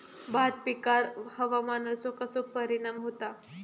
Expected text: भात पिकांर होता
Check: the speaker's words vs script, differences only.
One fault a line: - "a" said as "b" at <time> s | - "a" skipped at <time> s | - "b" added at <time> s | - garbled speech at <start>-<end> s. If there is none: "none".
- "हवामानाचो कसो परिणाम" added at 1.3 s